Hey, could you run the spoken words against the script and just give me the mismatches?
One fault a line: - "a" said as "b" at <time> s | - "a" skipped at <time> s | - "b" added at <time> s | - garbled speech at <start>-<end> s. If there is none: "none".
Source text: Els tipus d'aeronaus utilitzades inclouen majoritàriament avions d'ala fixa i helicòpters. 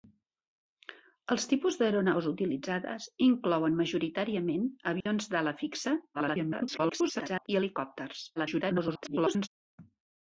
- garbled speech at 6.1-7.5 s
- garbled speech at 8.4-9.5 s